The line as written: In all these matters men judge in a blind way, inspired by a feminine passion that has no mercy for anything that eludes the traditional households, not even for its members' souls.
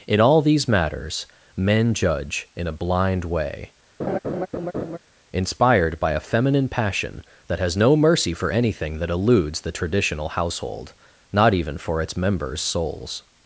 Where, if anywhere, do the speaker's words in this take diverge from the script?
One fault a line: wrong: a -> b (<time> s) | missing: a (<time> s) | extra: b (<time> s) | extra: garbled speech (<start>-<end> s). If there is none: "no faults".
wrong: households -> household (10.3 s)